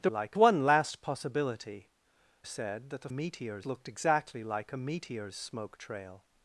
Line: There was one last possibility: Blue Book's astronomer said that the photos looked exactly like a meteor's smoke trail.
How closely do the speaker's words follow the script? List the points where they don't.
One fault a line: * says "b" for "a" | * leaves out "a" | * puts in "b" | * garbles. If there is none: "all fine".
* says "like" for "was"
* leaves out "Blue Book's astronomer"
* says "meteor's" for "photos"